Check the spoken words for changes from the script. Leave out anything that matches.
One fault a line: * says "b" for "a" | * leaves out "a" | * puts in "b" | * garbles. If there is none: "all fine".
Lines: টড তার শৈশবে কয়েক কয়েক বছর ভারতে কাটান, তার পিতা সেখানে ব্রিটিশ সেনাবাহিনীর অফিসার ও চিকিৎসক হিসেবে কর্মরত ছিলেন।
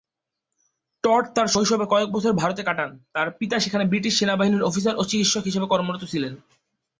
* leaves out "কয়েক"